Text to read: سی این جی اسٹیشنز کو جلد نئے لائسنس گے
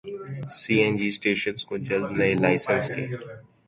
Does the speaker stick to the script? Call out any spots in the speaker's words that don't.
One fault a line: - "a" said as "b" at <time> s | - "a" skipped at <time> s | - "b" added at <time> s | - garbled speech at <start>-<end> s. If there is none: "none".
none